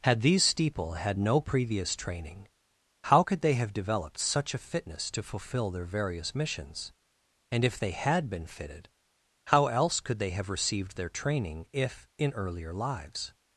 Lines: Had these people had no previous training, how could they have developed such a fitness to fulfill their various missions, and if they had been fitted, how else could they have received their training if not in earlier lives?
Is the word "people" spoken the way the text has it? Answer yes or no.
no